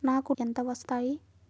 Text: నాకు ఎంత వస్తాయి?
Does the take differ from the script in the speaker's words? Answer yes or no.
no